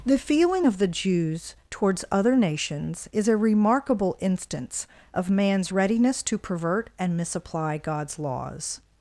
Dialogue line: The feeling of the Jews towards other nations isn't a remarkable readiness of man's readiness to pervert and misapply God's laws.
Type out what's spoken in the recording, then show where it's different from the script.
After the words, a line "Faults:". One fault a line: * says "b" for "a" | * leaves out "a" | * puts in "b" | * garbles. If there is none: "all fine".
The feeling of the Jews towards other nations is a remarkable instance of man's readiness to pervert and misapply God's laws.
Faults:
* says "is" for "isn't"
* says "instance" for "readiness"